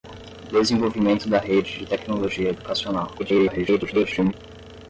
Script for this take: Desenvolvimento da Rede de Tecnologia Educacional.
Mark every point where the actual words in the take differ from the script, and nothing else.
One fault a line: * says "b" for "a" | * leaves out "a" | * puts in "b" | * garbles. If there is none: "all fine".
* garbles